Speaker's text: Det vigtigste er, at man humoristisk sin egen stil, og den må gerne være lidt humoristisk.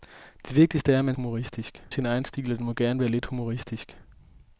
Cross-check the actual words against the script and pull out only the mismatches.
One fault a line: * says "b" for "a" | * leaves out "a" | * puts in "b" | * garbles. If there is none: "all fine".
all fine